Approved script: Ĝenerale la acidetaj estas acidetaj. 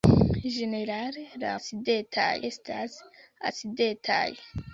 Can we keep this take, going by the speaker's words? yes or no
yes